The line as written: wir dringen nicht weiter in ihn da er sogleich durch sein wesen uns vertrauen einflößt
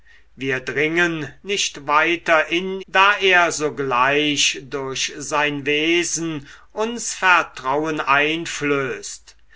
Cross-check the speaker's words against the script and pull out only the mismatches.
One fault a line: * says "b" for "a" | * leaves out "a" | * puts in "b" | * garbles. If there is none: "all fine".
* leaves out "ihn"